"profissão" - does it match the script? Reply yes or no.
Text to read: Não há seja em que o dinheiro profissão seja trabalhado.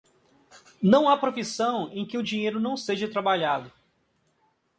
no